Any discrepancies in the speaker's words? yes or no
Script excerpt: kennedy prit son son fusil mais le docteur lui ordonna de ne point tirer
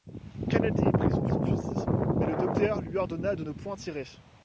no